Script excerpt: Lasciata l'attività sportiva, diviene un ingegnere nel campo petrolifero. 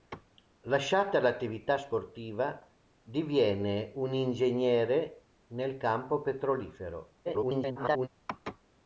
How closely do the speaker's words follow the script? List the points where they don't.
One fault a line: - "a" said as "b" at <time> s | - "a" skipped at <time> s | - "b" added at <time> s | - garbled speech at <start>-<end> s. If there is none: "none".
- garbled speech at 7.3-8.1 s